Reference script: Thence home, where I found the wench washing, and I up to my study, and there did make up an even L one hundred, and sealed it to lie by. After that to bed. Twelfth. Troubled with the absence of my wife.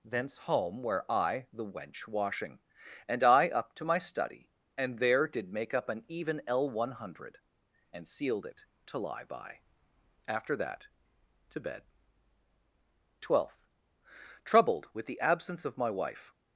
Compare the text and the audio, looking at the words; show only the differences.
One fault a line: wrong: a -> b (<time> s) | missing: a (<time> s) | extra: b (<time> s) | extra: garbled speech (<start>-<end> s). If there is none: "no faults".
missing: found (1.4 s)